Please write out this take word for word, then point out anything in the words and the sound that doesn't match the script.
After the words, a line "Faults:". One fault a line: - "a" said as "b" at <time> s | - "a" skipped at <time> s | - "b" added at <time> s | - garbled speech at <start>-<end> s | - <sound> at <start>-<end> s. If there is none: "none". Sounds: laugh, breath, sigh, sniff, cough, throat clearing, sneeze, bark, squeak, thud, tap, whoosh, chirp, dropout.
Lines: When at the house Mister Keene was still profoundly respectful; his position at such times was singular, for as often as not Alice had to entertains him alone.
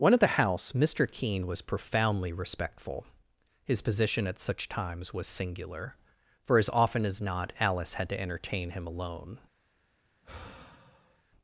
When at the house Mister Keene was profoundly respectful; his position at such times was singular, for as often as not Alice had to entertain him alone.
Faults:
- "still" skipped at 1.6 s
- "entertains" said as "entertain" at 8.2 s
- sigh at 10.2-11.2 s